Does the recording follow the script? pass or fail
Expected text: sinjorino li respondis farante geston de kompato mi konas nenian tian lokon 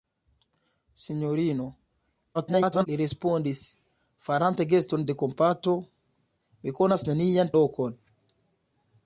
fail